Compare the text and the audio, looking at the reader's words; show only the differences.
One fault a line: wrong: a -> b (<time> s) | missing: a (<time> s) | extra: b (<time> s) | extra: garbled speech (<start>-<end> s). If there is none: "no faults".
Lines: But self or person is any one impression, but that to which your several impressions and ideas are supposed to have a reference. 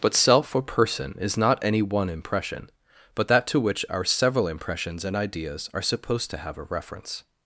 extra: not (1.4 s)
wrong: your -> our (3.9 s)